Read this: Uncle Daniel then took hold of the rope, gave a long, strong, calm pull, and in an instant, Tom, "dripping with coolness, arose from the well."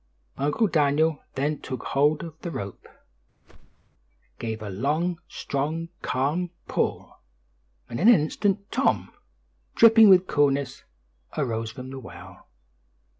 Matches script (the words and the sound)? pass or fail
fail